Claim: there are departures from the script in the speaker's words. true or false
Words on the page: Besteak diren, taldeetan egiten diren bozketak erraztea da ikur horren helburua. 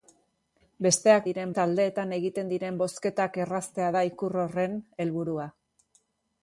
false